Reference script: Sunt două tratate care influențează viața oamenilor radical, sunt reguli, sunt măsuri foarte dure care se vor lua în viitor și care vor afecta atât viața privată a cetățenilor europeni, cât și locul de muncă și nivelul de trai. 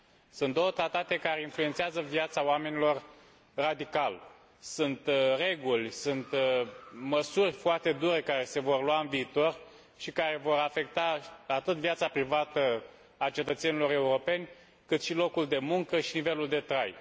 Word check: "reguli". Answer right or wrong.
right